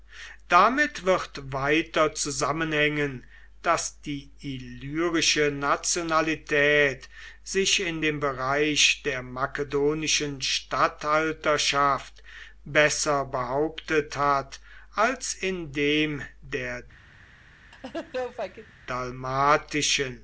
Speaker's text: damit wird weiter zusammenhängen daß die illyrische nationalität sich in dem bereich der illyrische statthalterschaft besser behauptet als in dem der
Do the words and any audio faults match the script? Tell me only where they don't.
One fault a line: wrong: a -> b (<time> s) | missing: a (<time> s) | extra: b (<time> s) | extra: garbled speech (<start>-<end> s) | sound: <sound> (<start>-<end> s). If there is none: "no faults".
wrong: illyrische -> makedonischen (9.2 s)
extra: hat (14.1 s)
sound: laugh (17.7-18.7 s)